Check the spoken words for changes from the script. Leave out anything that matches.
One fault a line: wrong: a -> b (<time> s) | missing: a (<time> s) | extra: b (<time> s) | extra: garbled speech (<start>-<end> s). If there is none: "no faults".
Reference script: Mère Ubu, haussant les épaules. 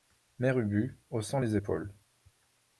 no faults